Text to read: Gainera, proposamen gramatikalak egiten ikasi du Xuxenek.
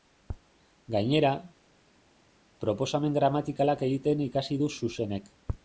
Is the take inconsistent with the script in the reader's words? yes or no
no